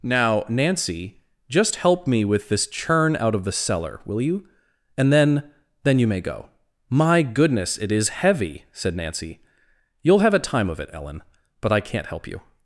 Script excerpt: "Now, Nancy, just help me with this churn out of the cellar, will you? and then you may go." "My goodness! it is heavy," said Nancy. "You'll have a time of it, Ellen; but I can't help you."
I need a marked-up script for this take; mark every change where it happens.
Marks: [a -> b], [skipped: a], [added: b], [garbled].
"Now, Nancy, just help me with this churn out of the cellar, will you? and then [added: then] you may go." "My goodness! it is heavy," said Nancy. "You'll have a time of it, Ellen; but I can't help you."